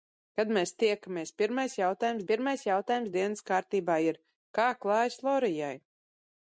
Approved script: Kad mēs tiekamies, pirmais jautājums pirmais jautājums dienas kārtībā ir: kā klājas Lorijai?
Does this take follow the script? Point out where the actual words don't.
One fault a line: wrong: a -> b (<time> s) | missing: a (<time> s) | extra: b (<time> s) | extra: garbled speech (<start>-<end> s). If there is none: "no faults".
no faults